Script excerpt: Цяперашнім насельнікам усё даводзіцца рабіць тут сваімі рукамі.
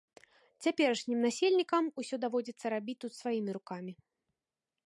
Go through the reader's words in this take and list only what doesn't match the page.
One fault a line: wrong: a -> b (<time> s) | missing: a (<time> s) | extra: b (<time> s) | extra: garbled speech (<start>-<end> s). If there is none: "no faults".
no faults